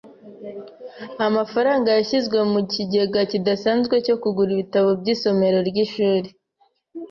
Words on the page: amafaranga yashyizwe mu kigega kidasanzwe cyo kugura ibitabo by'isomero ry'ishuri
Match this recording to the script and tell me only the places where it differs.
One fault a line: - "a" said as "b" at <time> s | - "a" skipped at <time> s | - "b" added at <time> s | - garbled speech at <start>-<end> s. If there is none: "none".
none